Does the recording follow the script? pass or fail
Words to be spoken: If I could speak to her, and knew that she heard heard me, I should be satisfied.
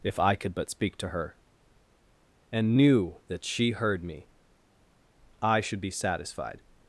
fail